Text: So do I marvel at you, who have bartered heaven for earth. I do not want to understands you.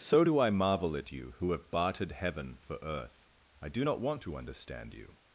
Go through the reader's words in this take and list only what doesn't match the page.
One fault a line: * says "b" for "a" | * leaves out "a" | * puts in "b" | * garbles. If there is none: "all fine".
* says "understand" for "understands"